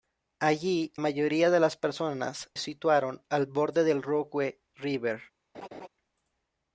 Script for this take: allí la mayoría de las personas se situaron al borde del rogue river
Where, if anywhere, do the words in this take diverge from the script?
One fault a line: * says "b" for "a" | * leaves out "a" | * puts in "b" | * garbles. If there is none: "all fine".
* leaves out "la"
* leaves out "se"